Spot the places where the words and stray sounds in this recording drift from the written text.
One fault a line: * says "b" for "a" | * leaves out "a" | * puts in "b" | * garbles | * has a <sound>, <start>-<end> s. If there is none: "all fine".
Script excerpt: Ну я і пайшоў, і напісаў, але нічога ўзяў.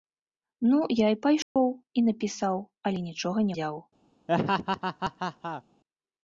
* has a dropout, 1.4-1.6 s
* has a laugh, 4.3-5.6 s